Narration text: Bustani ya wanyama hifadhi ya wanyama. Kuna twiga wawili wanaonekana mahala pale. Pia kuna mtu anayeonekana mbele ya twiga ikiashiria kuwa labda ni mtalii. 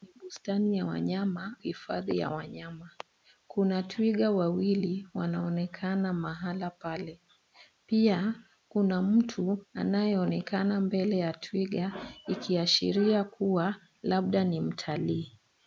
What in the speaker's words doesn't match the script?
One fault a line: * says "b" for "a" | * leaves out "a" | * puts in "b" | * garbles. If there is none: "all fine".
all fine